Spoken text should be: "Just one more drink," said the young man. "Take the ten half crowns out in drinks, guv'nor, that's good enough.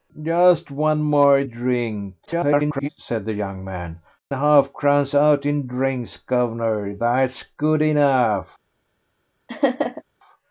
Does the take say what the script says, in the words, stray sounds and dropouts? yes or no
no